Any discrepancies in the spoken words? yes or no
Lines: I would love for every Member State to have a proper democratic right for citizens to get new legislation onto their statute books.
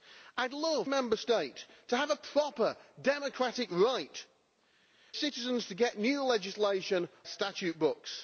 yes